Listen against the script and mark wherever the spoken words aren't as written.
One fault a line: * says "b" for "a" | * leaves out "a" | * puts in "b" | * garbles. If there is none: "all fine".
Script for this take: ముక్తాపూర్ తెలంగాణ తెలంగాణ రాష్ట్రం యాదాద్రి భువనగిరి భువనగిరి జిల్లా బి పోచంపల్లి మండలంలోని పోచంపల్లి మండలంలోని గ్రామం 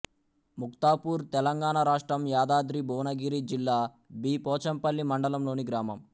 * leaves out "తెలంగాణ"
* leaves out "భువనగిరి"
* leaves out "పోచంపల్లి మండలంలోని"